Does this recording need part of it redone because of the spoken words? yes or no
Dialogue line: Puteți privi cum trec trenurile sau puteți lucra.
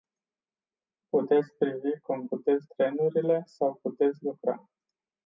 yes